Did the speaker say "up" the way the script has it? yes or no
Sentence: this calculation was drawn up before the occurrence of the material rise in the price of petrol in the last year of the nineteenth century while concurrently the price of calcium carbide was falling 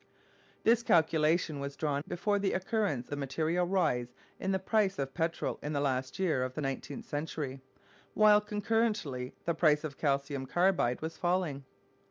no